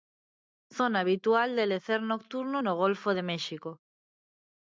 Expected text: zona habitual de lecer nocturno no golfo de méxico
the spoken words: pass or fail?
pass